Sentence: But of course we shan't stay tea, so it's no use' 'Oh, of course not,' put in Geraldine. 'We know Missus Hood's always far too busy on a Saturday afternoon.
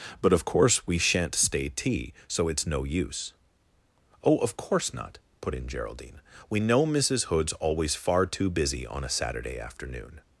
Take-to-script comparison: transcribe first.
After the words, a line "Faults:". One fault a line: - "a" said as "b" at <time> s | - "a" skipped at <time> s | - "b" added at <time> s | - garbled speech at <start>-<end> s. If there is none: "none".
But of course we shan't stay tea, so it's no use' 'Oh, of course not,' put in Geraldine. 'We know Missus Hood's always far too busy on a Saturday afternoon.
Faults:
none